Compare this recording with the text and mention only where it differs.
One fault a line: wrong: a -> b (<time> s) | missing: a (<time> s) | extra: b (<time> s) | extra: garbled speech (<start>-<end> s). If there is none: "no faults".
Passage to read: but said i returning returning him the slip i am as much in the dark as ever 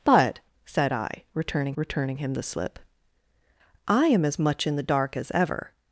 no faults